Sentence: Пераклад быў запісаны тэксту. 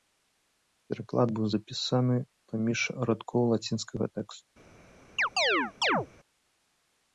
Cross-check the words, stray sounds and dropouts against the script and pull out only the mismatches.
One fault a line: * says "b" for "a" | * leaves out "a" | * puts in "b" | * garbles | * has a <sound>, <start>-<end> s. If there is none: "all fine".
* puts in "паміж радкоў лацінскага"
* has a chirp, 5.2-6.1 s